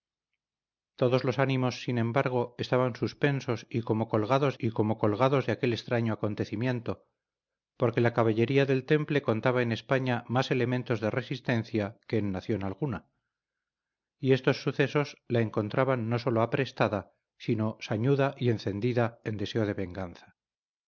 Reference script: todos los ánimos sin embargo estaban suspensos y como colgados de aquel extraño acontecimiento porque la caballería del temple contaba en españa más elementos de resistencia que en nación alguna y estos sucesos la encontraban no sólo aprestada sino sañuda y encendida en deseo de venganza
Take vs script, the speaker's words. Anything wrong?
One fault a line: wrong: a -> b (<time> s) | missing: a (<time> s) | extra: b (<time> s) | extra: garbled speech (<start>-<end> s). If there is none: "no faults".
extra: y como colgados (4.6 s)